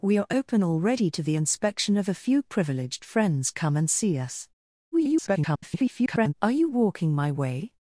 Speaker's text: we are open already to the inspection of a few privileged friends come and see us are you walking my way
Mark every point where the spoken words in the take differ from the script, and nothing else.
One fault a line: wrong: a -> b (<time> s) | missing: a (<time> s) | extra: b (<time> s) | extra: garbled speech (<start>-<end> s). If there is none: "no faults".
extra: garbled speech (4.9-6.3 s)